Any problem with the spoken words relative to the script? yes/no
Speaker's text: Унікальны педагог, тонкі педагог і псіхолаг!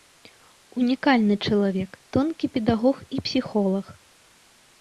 yes